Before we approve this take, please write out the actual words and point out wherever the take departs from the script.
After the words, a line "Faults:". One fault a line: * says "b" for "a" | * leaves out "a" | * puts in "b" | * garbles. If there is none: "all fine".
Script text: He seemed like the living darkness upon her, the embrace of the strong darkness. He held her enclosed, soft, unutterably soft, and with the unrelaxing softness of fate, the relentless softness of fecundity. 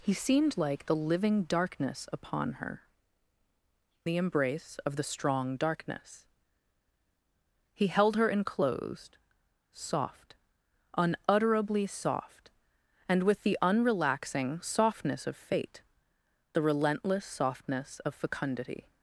He seemed like the living darkness upon her, the embrace of the strong darkness. He held her enclosed, soft, unutterably soft, and with the unrelaxing softness of fate, the relentless softness of fecundity.
Faults:
all fine